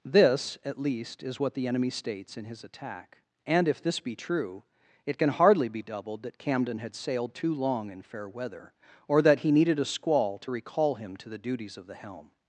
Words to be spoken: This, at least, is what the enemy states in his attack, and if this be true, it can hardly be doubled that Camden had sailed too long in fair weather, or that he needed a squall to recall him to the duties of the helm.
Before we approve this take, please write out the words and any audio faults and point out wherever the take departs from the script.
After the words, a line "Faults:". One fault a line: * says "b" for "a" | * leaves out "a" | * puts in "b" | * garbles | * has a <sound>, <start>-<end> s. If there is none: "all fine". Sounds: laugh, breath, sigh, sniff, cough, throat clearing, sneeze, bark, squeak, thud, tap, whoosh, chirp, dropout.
This, at least, is what the enemy states in his attack, and if this be true, it can hardly be doubled that Camden had sailed too long in fair weather, or that he needed a squall to recall him to the duties of the helm.
Faults:
all fine